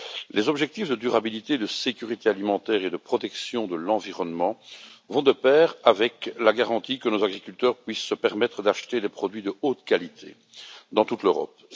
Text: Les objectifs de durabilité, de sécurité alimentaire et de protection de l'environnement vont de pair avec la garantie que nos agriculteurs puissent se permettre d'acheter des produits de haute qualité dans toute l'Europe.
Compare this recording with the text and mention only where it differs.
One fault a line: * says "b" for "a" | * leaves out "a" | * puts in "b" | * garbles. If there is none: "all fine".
all fine